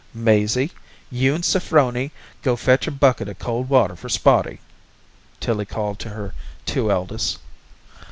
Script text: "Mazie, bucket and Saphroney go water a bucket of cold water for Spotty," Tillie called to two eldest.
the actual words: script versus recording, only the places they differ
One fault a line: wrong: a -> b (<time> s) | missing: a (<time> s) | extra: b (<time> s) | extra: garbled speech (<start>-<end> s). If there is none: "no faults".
wrong: bucket -> you (1.1 s)
wrong: water -> fetch (2.5 s)
extra: her (6.1 s)